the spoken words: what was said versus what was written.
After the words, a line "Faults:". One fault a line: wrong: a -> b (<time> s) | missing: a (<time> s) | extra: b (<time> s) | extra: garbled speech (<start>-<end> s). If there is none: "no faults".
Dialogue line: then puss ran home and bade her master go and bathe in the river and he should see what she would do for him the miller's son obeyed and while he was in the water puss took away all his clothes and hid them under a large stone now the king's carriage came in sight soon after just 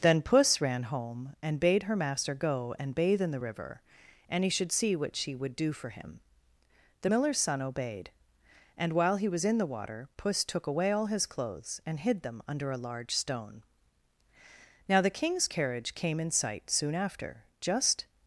then puss ran home and bade her master go and bathe in the river and he should see what she would do for him the miller's son obeyed and while he was in the water puss took away all his clothes and hid them under a large stone now the king's carriage came in sight soon after just
Faults:
no faults